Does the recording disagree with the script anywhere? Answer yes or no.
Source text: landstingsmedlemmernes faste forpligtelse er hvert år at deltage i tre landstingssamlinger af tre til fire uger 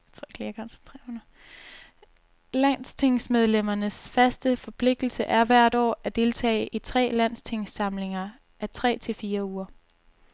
no